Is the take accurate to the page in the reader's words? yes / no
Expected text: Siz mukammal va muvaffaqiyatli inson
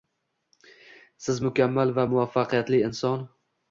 yes